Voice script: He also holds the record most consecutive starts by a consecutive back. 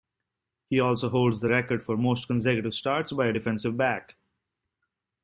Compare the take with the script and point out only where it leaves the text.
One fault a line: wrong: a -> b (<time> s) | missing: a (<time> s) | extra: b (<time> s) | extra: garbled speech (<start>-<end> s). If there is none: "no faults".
extra: for (1.8 s)
wrong: consecutive -> defensive (3.3 s)